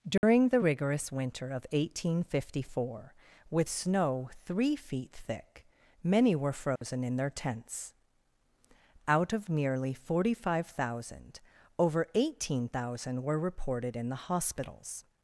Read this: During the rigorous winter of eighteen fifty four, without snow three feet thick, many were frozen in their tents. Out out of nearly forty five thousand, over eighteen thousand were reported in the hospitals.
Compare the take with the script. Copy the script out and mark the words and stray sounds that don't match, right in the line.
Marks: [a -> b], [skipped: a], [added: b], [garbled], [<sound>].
During [dropout] the rigorous winter of eighteen fifty four, [without -> with] snow three feet thick, many were frozen [dropout] in their tents. Out [skipped: out] of nearly forty five thousand, over eighteen thousand were reported in the hospitals.